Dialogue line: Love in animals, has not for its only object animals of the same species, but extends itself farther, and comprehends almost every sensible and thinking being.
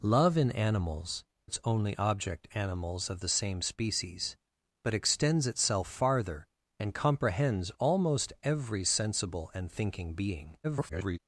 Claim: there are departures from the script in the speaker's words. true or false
true